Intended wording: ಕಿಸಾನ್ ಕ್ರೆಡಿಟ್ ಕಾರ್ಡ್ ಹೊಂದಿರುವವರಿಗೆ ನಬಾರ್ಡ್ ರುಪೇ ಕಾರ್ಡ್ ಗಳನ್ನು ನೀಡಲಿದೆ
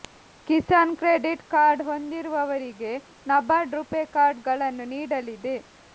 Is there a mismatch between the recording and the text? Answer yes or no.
no